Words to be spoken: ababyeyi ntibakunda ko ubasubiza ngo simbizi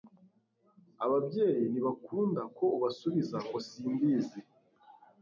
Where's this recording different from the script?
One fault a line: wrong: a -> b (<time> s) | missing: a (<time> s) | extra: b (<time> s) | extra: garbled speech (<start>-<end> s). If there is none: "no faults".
no faults